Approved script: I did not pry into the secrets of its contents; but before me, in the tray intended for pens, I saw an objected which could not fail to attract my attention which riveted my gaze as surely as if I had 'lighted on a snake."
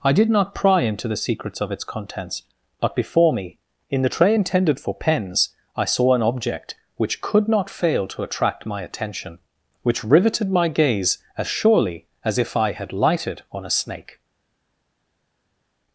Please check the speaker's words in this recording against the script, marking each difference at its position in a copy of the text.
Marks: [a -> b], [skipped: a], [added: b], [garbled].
I did not pry into the secrets of its contents; but before me, in the tray intended for pens, I saw an [objected -> object] which could not fail to attract my attention which riveted my gaze as surely as if I had 'lighted on a snake."